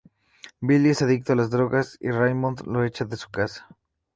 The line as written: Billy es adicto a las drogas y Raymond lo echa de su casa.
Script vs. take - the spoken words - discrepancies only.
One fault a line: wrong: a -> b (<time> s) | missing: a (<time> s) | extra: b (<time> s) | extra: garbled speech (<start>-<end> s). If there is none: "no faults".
no faults